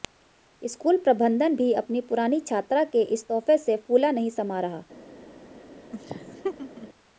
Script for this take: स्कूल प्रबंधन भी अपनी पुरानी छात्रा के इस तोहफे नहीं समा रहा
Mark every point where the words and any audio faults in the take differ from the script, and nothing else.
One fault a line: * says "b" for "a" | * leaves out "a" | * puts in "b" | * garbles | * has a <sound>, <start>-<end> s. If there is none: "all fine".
* puts in "से फूला"
* has a laugh, 5.9-6.9 s